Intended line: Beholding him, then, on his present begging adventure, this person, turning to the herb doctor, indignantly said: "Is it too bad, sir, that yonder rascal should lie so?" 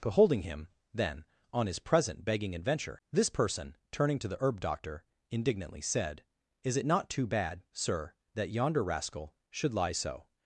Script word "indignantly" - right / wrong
right